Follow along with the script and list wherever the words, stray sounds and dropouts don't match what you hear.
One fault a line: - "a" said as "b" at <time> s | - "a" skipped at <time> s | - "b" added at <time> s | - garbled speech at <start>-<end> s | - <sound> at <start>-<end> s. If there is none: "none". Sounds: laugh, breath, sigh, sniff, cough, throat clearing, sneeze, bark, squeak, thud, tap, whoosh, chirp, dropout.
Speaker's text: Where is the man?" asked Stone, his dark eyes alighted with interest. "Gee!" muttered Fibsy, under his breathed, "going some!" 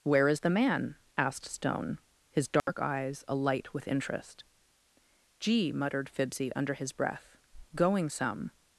- dropout at 2.6-2.7 s
- "alighted" said as "alight" at 3.3 s
- "breathed" said as "breath" at 6.9 s